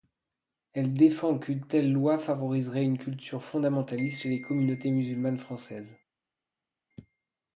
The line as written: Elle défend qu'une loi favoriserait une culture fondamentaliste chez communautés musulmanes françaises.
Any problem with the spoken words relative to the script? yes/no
yes